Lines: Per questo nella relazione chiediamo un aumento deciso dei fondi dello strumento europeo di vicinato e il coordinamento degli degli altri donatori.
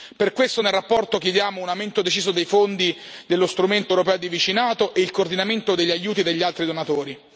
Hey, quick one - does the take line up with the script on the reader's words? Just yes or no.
no